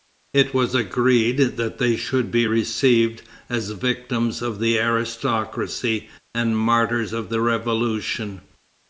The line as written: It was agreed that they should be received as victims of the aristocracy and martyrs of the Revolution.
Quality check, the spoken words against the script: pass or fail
pass